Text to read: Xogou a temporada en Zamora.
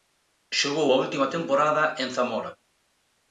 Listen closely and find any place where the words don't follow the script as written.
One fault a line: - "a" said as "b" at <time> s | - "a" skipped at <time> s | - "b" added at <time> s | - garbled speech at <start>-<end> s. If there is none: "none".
- "última" added at 1.0 s